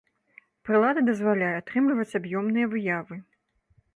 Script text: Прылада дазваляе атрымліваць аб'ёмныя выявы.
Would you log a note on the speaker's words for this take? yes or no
no